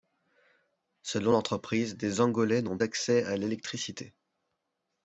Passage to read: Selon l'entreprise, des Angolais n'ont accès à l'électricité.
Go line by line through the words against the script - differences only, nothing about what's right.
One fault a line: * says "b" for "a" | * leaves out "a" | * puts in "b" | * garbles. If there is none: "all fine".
all fine